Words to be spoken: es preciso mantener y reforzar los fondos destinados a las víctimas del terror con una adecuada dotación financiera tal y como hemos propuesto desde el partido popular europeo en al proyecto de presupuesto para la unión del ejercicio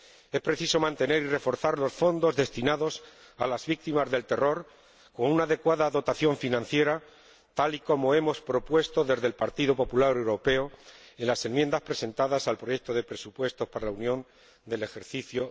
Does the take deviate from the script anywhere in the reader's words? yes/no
yes